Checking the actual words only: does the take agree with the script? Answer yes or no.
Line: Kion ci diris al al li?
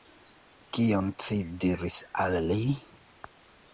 no